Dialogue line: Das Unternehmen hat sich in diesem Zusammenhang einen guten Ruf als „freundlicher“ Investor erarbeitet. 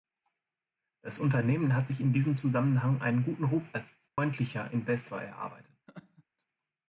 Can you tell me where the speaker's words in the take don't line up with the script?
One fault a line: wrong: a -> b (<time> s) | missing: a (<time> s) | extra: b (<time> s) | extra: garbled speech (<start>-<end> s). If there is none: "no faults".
no faults